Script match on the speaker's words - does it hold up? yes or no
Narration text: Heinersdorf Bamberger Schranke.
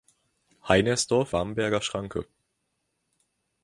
yes